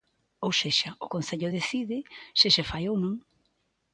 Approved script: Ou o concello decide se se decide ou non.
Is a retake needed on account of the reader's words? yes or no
yes